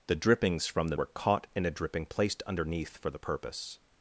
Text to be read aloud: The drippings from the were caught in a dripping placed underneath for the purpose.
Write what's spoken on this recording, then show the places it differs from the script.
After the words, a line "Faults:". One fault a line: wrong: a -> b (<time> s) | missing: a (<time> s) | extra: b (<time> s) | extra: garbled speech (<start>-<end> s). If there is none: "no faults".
The drippings from the were caught in a dripping placed underneath for the purpose.
Faults:
no faults